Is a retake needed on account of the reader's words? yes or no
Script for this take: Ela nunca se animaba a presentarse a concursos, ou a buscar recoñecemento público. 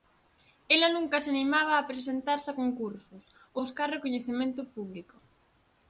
yes